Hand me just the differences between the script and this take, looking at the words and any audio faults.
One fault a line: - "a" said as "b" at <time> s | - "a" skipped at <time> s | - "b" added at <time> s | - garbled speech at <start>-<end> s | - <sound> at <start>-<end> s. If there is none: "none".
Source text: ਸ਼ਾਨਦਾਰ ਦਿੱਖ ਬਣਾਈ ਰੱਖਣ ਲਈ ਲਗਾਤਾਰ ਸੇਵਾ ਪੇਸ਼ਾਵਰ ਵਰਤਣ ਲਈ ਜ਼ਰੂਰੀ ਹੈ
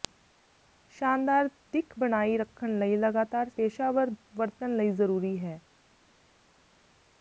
- "ਸੇਵਾ" skipped at 3.5 s